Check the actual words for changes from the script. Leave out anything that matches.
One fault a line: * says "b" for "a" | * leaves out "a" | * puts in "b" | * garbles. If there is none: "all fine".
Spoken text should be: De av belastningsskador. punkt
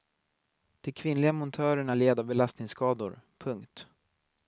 * puts in "kvinnliga montörerna led"